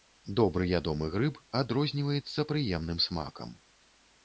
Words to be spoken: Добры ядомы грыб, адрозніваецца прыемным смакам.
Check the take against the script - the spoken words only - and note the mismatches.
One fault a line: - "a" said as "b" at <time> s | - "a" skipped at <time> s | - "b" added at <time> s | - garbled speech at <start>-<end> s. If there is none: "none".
none